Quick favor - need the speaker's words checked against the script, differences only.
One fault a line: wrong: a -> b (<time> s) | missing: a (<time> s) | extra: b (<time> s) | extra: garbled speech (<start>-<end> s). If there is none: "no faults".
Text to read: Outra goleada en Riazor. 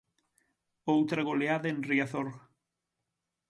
no faults